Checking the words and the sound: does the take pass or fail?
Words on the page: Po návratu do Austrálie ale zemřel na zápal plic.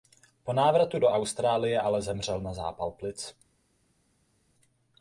pass